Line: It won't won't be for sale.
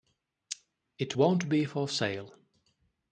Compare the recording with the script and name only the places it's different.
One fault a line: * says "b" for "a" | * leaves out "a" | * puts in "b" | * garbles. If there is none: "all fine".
* leaves out "won't"